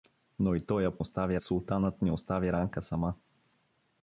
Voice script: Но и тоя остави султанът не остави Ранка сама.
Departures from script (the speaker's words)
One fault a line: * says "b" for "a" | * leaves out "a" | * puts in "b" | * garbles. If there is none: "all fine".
all fine